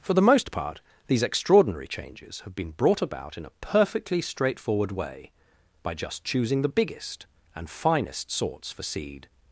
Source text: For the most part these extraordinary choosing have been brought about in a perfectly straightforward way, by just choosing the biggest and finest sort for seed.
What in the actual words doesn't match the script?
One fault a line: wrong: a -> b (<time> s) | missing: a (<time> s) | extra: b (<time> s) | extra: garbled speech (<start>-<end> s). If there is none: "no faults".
wrong: choosing -> changes (1.9 s)
wrong: sort -> sorts (8.3 s)